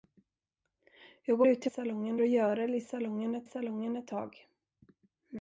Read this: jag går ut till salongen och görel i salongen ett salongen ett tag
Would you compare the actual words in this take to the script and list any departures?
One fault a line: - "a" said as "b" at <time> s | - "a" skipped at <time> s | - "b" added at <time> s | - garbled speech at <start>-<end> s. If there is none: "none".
none